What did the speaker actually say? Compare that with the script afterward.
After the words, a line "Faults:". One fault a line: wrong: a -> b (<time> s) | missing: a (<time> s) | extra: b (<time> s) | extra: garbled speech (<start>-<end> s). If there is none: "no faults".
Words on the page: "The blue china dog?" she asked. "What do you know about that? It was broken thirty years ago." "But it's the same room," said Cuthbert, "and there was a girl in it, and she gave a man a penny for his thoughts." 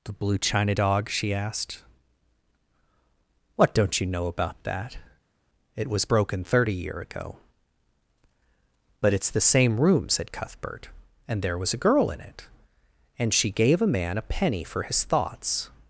"The blue china dog?" she asked. "What don't you know about that? It was broken thirty year ago." "But it's the same room," said Cuthbert, "and there was a girl in it, and she gave a man a penny for his thoughts."
Faults:
wrong: do -> don't (3.7 s)
wrong: years -> year (6.7 s)